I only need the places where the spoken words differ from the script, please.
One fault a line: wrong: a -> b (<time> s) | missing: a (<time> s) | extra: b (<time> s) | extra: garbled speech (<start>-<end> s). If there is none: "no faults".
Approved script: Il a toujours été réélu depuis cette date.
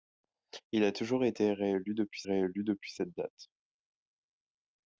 extra: réélu depuis (2.2 s)